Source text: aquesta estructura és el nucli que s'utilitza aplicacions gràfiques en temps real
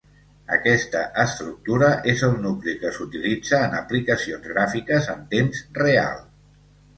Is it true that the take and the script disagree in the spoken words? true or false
true